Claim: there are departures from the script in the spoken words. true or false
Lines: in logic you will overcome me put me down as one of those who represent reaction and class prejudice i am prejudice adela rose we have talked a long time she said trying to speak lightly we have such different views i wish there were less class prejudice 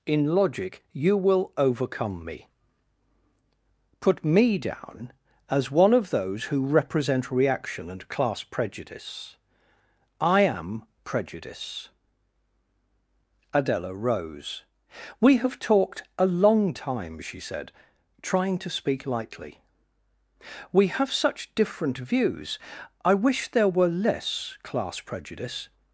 false